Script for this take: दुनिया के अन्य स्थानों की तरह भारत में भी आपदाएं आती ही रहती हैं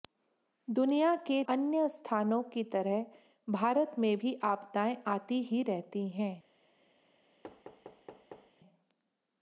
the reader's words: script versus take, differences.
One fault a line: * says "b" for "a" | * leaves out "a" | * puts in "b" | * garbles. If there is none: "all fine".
all fine